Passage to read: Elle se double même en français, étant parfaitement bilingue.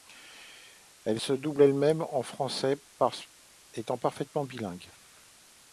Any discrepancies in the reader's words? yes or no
yes